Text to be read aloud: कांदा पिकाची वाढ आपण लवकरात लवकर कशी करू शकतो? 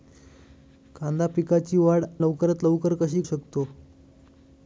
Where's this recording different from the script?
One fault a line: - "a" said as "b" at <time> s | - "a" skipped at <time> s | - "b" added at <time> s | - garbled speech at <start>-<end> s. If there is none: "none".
- "आपण" skipped at 2.0 s
- "करू" skipped at 3.2 s